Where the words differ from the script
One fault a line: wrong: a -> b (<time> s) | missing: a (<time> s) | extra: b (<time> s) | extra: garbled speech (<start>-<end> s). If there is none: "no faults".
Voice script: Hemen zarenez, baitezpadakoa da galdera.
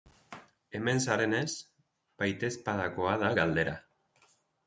no faults